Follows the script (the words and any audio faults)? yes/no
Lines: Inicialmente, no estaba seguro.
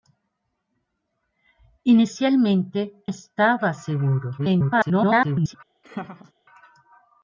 no